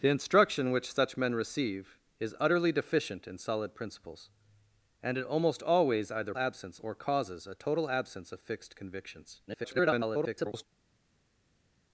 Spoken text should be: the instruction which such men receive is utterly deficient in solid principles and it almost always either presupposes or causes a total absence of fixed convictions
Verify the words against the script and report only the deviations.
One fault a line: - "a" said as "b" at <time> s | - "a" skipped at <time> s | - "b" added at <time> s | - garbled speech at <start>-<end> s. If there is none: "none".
- "presupposes" said as "absence" at 6.4 s
- garbled speech at 9.5-10.6 s